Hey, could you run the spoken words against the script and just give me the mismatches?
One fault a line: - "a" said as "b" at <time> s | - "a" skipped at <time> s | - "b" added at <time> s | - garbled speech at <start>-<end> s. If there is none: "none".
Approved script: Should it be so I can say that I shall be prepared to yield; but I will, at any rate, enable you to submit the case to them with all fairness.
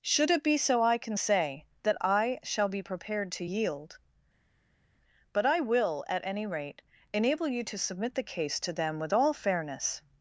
none